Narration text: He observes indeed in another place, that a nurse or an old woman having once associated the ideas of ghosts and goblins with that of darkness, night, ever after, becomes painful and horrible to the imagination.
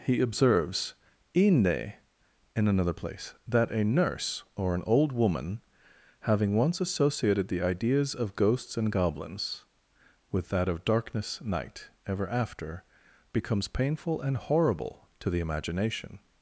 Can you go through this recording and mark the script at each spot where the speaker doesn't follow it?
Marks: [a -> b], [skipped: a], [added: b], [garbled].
He observes [indeed -> inde] in another place, that a nurse or an old woman having once associated the ideas of ghosts and goblins with that of darkness, night, ever after, becomes painful and horrible to the imagination.